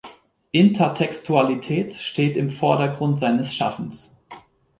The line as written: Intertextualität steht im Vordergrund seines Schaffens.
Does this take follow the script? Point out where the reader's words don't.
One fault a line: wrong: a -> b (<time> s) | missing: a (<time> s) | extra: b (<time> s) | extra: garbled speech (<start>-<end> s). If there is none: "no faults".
no faults